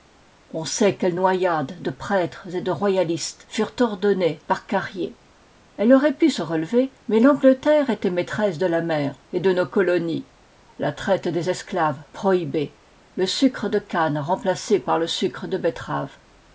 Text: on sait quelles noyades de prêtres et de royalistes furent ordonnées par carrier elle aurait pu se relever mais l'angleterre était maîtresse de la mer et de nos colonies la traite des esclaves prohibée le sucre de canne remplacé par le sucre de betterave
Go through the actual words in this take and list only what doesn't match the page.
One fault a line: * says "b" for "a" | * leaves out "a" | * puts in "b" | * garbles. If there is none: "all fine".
all fine